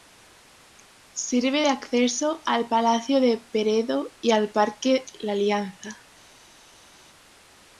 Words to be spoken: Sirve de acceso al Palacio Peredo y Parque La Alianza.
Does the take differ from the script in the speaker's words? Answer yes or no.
yes